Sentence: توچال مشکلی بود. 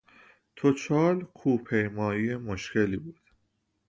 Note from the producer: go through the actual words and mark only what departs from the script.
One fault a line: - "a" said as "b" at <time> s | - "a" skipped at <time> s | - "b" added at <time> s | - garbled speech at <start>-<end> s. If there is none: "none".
- "کوه پیمایی" added at 1.2 s